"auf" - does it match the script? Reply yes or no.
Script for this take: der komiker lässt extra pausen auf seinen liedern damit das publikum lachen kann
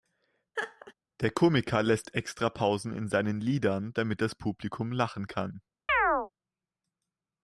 no